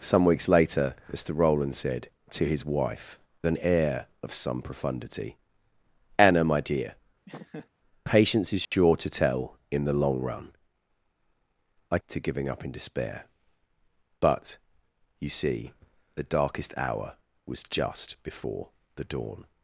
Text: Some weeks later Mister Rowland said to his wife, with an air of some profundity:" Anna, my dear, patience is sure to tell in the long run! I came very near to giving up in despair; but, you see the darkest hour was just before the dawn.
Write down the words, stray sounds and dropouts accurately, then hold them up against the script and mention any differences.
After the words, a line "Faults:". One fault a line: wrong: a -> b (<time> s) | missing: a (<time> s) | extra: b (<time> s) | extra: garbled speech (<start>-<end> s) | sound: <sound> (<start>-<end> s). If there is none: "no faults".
Some weeks later Mister Rowland said to his wife, an air of some profundity:" Anna, my dear, patience is sure to tell in the long run! I to giving up in despair; but, you see the darkest hour was just before the dawn.
Faults:
missing: with (3.2 s)
sound: laugh (7.3-7.7 s)
sound: dropout (8.6-8.7 s)
missing: came very near (12.0 s)